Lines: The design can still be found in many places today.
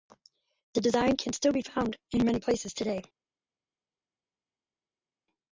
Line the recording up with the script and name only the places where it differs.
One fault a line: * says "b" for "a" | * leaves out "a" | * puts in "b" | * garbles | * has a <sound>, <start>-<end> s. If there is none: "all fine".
all fine